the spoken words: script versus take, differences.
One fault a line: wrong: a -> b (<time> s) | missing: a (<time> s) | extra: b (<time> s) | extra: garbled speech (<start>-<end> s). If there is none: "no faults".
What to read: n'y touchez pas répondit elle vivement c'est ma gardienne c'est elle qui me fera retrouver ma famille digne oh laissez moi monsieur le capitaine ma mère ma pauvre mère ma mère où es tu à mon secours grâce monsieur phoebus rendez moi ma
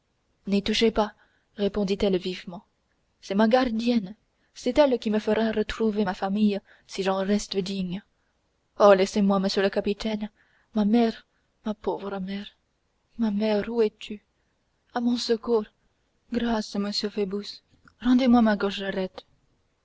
extra: si j'en reste (6.9 s)